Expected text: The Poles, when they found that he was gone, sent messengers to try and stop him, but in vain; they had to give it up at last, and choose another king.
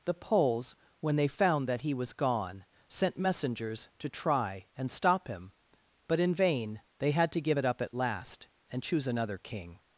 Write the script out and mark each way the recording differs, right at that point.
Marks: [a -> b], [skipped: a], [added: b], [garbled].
The Poles, when they found that he was gone, sent messengers to try and stop him, but in vain; they had to give it up at last, and choose another king.